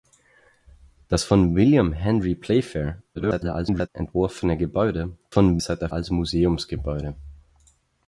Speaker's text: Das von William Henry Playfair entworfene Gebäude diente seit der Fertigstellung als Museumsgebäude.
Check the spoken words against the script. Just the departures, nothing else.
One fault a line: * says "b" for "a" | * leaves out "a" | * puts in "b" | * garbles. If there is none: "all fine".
* garbles
* says "von" for "diente"
* leaves out "Fertigstellung"